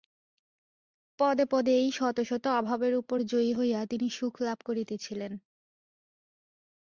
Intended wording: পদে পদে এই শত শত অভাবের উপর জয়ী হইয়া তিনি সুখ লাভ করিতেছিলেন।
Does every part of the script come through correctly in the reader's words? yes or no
yes